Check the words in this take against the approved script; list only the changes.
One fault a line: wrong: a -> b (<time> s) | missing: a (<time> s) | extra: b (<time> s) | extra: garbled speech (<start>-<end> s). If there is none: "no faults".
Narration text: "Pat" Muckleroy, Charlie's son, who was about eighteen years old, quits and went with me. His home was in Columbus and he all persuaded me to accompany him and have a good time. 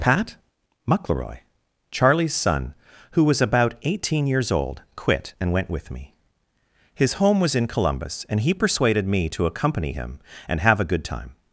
wrong: quits -> quit (5.0 s)
missing: all (8.5 s)